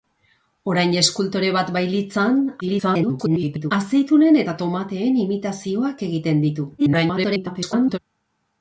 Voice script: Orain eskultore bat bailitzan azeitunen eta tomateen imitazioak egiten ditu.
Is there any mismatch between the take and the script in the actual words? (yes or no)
yes